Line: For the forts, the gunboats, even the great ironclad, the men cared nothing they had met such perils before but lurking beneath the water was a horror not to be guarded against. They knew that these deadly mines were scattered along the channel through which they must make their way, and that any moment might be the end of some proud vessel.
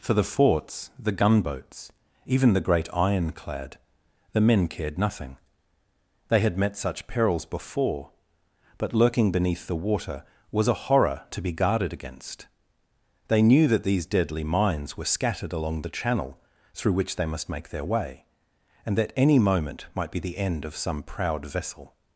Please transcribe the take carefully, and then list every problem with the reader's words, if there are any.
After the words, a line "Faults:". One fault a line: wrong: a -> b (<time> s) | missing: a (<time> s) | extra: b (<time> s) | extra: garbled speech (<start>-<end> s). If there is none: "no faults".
For the forts, the gunboats, even the great ironclad, the men cared nothing they had met such perils before but lurking beneath the water was a horror to be guarded against. They knew that these deadly mines were scattered along the channel through which they must make their way, and that any moment might be the end of some proud vessel.
Faults:
missing: not (11.2 s)